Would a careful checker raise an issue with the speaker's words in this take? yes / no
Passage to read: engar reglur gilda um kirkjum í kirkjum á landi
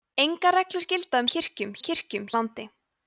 no